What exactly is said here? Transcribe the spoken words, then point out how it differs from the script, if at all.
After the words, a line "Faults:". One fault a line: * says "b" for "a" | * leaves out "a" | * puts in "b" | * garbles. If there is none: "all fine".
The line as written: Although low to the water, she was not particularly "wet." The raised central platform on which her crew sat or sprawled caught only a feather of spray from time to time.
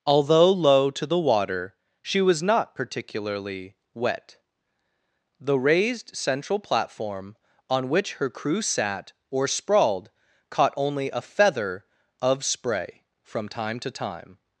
Although low to the water, she was not particularly "wet." The raised central platform on which her crew sat or sprawled caught only a feather of spray from time to time.
Faults:
all fine